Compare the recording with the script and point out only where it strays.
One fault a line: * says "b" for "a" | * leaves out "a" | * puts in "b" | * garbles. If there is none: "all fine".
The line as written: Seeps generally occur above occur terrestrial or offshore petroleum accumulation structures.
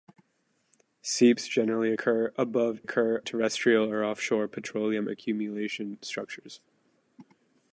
all fine